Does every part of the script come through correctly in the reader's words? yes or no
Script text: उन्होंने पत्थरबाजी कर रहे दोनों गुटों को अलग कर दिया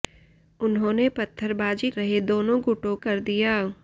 no